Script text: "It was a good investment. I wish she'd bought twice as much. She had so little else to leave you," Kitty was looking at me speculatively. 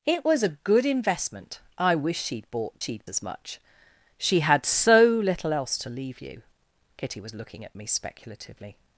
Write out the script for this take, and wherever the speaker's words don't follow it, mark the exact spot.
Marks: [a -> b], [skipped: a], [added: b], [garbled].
"It was a good investment. I wish she'd bought [twice -> she'd] as much. She had so little else to leave you," Kitty was looking at me speculatively.